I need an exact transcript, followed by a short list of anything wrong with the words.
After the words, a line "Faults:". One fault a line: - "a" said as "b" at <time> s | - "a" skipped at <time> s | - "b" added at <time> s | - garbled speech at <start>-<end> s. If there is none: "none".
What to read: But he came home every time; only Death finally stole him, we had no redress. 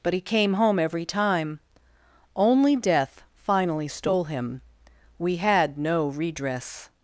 But he came home every time; only Death finally stole him, we had no redress.
Faults:
none